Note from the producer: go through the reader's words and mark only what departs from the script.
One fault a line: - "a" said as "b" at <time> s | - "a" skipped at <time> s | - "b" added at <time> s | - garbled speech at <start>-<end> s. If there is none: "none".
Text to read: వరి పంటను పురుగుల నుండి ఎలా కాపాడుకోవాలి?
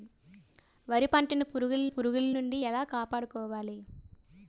- "పురుగుల" added at 1.9 s